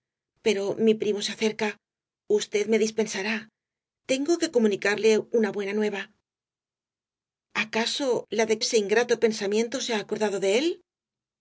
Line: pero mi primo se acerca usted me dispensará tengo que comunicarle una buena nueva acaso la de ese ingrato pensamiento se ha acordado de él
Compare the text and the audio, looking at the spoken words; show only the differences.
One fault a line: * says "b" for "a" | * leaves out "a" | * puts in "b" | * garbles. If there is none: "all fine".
all fine